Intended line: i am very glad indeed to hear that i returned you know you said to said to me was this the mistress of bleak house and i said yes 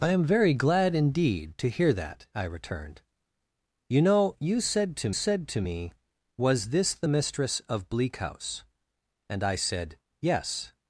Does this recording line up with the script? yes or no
yes